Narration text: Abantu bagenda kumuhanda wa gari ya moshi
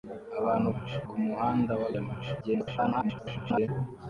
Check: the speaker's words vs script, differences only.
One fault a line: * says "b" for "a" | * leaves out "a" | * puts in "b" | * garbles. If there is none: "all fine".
* says "moshi" for "bagenda"
* leaves out "gari"
* garbles